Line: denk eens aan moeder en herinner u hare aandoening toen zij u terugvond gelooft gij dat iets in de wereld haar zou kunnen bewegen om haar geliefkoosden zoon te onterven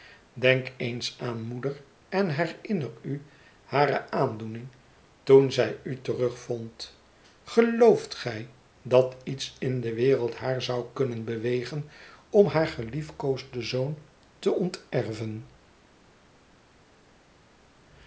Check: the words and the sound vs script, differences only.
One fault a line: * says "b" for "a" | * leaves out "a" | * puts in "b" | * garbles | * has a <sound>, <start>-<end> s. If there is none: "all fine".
all fine